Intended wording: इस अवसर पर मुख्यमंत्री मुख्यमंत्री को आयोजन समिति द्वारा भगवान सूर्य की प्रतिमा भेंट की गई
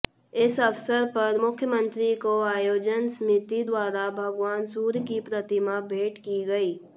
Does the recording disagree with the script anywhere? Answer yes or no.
yes